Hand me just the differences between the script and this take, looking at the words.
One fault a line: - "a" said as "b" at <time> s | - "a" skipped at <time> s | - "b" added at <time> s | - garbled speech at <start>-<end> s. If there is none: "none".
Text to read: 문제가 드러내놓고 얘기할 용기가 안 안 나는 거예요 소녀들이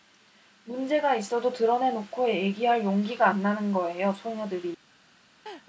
- "있어도" added at 1.1 s
- "안" skipped at 3.4 s